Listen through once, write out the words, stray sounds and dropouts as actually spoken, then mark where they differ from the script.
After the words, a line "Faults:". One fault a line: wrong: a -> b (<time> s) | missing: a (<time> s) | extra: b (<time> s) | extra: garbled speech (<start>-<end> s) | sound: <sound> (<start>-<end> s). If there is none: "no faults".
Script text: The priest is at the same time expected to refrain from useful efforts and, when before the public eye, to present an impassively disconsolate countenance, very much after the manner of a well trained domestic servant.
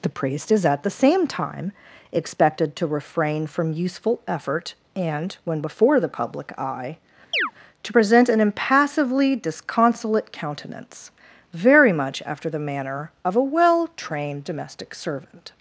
The priest is at the same time expected to refrain from useful effort and, when before the public eye, to present an impassively disconsolate countenance, very much after the manner of a well trained domestic servant.
Faults:
wrong: efforts -> effort (4.3 s)
sound: chirp (7.3-7.5 s)